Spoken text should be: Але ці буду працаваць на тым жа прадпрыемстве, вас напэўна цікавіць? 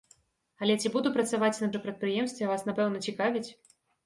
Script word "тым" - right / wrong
wrong